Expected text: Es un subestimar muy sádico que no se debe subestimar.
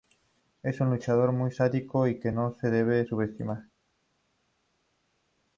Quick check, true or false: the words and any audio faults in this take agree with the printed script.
false